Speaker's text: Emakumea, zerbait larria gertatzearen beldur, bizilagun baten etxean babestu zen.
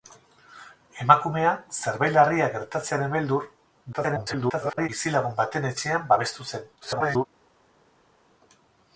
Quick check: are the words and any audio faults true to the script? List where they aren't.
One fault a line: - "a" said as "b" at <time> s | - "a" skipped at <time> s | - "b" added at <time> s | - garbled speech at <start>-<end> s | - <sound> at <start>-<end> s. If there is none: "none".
- garbled speech at 3.9-4.9 s
- garbled speech at 6.8-7.3 s